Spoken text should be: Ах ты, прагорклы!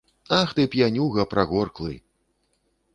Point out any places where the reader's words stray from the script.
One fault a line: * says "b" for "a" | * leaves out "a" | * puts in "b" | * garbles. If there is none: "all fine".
* puts in "п'янюга"